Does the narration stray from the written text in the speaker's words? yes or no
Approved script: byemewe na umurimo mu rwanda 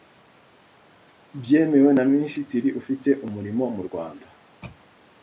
yes